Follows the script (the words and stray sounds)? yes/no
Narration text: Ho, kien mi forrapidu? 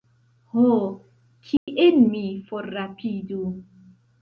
no